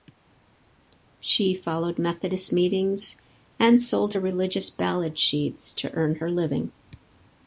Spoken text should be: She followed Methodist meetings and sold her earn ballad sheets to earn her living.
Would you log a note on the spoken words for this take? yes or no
yes